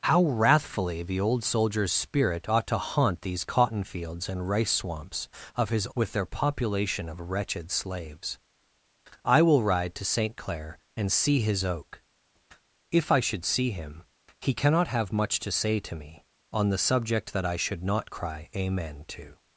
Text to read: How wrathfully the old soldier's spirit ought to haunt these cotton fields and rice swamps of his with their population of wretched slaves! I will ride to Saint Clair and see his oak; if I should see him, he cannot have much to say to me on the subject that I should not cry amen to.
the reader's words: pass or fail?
pass